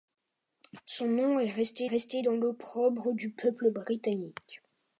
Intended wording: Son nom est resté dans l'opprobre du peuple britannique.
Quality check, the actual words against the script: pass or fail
fail